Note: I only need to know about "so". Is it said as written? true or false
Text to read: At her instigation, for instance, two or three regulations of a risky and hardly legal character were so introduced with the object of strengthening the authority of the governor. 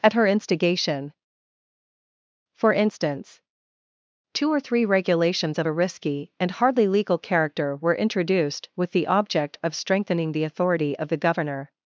false